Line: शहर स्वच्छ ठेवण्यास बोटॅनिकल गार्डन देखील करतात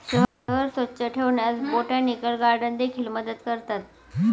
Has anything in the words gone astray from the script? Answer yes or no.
yes